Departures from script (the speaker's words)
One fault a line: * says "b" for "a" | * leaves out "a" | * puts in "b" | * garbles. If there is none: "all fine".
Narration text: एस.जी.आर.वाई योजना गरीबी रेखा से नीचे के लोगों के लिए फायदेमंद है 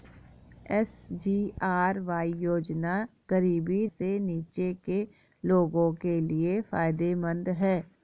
* leaves out "रेखा"